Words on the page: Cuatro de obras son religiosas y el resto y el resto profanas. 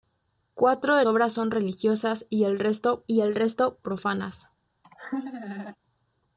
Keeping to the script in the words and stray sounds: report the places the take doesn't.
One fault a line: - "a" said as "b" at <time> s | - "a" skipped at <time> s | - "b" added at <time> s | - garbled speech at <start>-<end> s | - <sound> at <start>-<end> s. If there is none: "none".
- laugh at 4.8-5.8 s